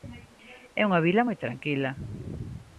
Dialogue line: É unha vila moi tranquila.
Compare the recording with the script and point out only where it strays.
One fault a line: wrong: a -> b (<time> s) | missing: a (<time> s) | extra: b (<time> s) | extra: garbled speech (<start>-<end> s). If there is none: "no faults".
no faults